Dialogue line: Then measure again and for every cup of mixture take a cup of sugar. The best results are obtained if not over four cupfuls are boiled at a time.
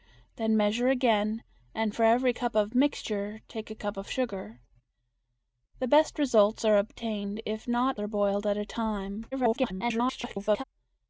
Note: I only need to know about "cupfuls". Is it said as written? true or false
false